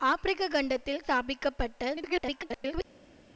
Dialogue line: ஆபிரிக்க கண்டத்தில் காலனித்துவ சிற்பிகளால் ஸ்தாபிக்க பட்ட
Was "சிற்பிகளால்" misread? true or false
true